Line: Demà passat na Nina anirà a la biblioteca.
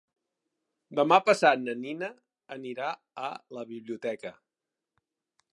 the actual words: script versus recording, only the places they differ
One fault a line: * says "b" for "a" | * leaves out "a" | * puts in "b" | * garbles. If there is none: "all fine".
all fine